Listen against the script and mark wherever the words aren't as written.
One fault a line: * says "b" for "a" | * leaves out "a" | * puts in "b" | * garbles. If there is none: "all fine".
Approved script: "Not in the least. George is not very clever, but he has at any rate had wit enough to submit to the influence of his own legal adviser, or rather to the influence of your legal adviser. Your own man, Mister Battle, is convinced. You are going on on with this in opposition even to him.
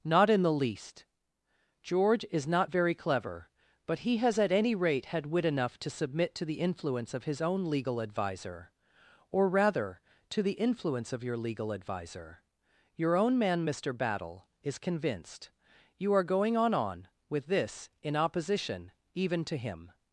all fine